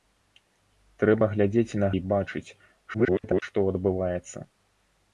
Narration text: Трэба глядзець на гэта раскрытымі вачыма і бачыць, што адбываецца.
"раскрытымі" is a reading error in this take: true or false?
true